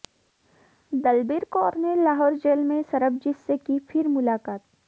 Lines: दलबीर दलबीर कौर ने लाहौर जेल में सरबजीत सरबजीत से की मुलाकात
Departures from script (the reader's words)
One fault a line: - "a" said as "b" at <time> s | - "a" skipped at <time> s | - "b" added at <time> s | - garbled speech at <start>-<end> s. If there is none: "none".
- "दलबीर" skipped at 1.4 s
- "सरबजीत" skipped at 3.4 s
- "फिर" added at 3.8 s